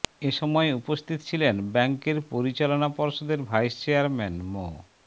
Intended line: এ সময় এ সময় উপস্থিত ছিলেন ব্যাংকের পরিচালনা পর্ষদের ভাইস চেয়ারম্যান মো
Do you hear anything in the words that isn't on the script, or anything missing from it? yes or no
yes